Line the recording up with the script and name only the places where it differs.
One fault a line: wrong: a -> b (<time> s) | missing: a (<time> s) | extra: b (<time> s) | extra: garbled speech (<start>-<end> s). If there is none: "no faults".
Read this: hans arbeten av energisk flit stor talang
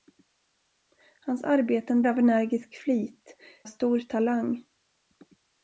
no faults